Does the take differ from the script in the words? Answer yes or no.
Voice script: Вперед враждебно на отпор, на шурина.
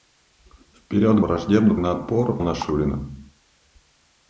no